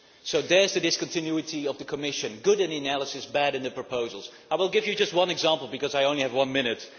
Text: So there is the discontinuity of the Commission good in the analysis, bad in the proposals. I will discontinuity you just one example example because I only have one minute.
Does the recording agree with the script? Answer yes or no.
no